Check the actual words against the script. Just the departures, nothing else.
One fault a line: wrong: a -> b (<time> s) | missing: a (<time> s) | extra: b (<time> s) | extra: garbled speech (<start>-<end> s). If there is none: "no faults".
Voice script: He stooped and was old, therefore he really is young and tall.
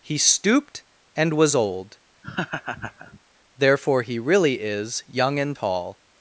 no faults